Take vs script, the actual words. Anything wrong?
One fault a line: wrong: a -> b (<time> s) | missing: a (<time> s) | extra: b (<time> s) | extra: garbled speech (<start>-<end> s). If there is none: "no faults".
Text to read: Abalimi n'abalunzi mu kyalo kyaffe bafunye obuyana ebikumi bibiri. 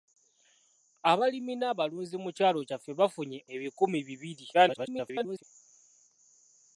missing: obuyana (3.4 s)
extra: garbled speech (4.5-5.4 s)